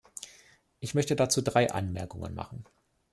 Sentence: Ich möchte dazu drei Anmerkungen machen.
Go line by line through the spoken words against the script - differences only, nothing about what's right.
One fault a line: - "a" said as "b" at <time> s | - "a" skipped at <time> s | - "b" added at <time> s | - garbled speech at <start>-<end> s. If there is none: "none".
none